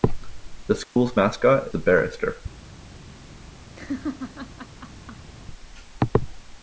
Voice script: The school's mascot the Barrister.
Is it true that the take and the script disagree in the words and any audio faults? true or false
true